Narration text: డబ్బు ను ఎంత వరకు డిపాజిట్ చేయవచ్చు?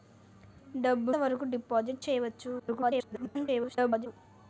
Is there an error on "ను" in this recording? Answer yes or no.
yes